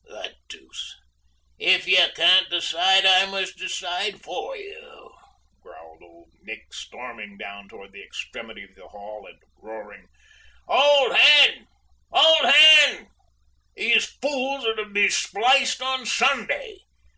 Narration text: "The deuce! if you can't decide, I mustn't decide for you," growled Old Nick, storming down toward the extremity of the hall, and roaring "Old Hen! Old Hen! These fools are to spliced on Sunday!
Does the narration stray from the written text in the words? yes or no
yes